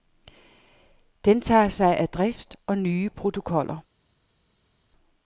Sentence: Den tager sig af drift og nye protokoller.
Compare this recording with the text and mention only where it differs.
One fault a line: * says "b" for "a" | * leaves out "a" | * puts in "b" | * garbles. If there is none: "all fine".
all fine